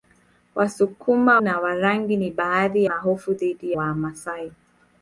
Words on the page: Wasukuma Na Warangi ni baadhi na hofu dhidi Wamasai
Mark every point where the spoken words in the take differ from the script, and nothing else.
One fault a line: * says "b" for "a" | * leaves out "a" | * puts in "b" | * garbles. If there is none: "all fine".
all fine